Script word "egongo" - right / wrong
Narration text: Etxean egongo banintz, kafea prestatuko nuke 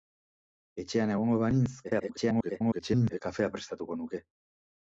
right